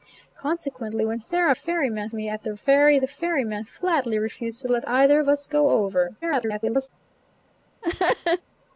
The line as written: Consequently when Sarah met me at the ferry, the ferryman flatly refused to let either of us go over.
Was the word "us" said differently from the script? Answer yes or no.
no